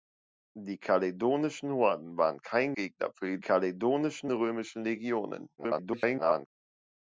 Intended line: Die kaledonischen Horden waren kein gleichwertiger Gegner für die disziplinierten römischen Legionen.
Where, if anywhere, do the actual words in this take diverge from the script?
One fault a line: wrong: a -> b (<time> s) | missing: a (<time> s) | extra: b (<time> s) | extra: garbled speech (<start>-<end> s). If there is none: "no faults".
missing: gleichwertiger (2.7 s)
wrong: disziplinierten -> kaledonischen (3.4 s)
extra: garbled speech (5.6-6.5 s)